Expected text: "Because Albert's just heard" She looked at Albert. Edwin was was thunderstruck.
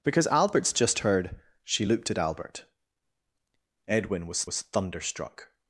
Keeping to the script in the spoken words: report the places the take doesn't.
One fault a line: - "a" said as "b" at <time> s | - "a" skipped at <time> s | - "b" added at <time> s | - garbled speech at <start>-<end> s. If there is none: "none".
none